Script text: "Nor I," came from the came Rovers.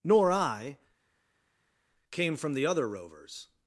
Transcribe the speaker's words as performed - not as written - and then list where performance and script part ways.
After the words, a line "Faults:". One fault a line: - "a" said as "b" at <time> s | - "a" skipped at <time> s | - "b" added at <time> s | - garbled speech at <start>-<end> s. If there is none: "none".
"Nor I," came from the other Rovers.
Faults:
- "came" said as "other" at 2.7 s